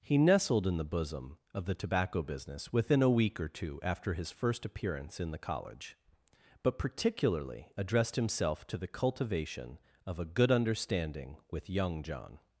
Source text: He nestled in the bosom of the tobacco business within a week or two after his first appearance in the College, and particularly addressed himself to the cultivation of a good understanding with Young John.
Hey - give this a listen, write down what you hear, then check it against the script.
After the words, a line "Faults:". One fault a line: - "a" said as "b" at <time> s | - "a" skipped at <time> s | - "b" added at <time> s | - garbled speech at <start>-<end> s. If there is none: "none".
He nestled in the bosom of the tobacco business within a week or two after his first appearance in the College, but particularly addressed himself to the cultivation of a good understanding with Young John.
Faults:
- "and" said as "but" at 6.6 s